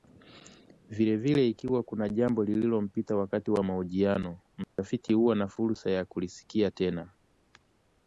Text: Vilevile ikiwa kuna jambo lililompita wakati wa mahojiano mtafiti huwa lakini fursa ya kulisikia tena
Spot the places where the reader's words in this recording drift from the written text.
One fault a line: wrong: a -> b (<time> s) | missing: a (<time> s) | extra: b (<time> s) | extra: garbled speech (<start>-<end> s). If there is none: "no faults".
wrong: lakini -> na (5.4 s)